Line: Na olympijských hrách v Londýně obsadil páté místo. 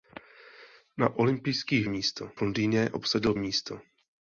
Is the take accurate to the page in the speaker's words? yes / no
no